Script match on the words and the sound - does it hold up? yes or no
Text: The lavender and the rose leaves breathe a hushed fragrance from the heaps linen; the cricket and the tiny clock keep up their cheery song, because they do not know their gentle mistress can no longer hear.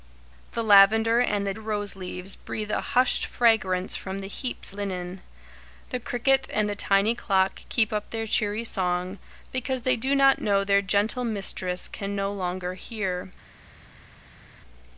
yes